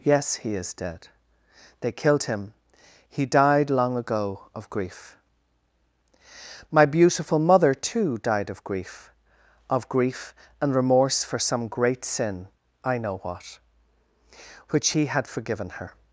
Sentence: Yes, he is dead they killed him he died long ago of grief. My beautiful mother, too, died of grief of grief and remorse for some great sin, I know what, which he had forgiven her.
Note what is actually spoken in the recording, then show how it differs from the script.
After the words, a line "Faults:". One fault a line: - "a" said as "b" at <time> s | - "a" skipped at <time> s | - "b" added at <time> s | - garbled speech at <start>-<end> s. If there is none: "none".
Yes, he is dead they killed him he died long ago of grief. My beautiful mother, too, died of grief of grief and remorse for some great sin, I know what, which he had forgiven her.
Faults:
none